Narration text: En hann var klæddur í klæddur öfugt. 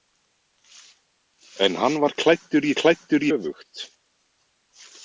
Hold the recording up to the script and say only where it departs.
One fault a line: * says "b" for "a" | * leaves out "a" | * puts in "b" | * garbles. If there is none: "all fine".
all fine